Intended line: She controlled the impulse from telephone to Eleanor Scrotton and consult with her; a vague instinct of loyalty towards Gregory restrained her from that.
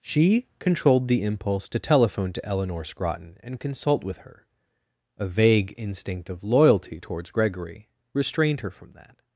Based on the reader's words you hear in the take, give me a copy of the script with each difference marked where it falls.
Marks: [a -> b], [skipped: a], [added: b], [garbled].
She controlled the impulse [from -> to] telephone to Eleanor Scrotton and consult with her; a vague instinct of loyalty towards Gregory restrained her from that.